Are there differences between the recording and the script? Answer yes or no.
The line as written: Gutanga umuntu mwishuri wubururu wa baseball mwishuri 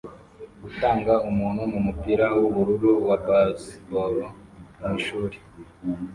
yes